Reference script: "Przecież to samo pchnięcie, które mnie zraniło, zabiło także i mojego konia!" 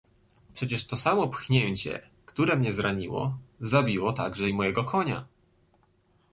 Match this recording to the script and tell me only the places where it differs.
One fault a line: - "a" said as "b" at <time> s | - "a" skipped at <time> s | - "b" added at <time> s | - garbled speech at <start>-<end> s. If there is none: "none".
none